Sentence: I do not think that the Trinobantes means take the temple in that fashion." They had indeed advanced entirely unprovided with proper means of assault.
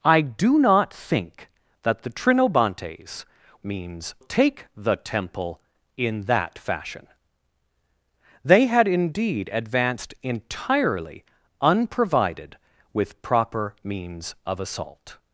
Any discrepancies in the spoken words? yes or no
no